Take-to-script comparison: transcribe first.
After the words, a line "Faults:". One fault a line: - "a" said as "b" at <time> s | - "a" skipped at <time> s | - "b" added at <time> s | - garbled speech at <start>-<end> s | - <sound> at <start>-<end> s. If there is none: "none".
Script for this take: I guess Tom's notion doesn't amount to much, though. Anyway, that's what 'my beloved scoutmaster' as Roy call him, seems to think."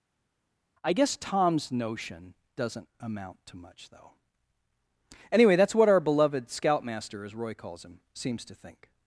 I guess Tom's notion doesn't amount to much, though. Anyway, that's what 'our beloved scoutmaster' as Roy calls him, seems to think."
Faults:
- "my" said as "our" at 5.9 s
- "call" said as "calls" at 7.5 s